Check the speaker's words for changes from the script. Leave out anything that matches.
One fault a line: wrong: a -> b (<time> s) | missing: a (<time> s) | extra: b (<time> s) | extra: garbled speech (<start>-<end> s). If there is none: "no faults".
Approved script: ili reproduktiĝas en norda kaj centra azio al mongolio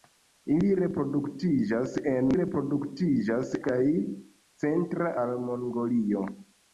wrong: norda -> reproduktiĝas (2.3 s)
missing: azio (5.1 s)